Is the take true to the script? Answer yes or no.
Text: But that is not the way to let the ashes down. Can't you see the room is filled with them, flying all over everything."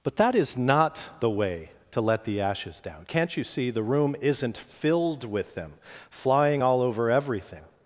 no